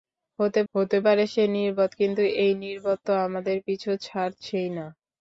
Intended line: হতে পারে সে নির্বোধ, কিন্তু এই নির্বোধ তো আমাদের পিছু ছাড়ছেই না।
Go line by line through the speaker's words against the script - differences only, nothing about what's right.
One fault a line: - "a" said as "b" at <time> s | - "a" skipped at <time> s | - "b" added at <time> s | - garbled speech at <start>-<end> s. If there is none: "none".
- "হতে" added at 0.7 s